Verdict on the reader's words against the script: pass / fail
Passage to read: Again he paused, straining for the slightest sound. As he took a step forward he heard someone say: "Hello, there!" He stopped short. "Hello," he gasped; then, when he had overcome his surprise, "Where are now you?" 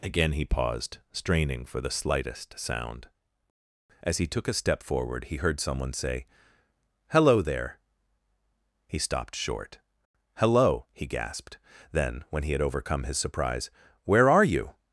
fail